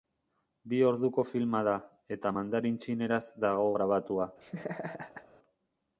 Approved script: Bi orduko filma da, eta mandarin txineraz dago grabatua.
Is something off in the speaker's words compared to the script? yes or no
no